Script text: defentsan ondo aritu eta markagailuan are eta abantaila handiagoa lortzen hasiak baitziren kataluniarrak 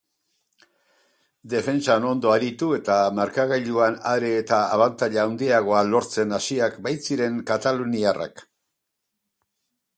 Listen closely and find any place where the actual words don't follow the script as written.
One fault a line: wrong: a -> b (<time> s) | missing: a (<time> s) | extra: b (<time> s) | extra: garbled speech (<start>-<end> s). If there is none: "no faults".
no faults